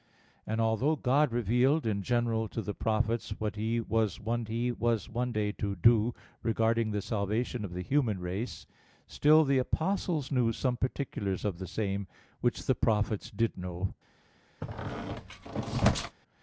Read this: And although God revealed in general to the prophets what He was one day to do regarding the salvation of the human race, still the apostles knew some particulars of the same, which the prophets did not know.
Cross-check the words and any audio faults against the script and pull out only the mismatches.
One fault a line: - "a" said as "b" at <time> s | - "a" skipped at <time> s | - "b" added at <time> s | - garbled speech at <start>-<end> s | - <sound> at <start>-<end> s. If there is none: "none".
- "He was one" added at 4.5 s
- "not" skipped at 13.6 s
- squeak at 14.6-16.2 s